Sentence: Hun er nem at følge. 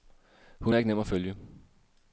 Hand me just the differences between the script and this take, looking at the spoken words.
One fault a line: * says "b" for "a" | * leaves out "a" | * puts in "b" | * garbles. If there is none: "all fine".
* puts in "ikke"